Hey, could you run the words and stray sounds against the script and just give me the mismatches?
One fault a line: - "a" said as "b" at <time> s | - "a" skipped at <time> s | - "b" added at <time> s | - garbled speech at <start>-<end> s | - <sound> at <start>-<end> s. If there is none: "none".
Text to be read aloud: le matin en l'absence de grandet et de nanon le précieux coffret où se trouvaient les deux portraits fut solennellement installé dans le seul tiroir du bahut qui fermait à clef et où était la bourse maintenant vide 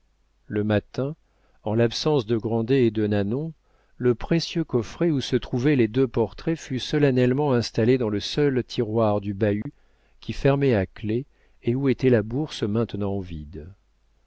- dropout at 9.6-9.7 s